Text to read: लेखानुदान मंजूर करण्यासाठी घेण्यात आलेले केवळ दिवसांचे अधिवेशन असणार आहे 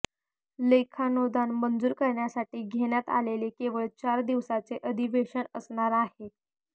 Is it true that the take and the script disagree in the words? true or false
true